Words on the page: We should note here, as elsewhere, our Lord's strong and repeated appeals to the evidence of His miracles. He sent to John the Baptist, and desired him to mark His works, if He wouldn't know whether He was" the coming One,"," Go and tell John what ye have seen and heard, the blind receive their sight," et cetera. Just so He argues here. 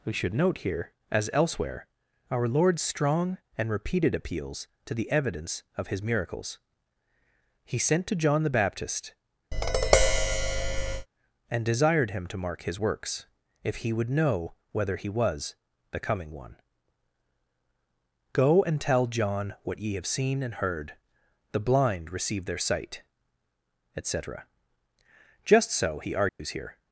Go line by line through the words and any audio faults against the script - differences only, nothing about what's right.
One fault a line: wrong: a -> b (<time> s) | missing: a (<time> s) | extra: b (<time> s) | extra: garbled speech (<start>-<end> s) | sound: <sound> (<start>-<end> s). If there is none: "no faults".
sound: tap (9.5-11.1 s)
wrong: wouldn't -> would (13.9 s)
sound: dropout (26.3-26.4 s)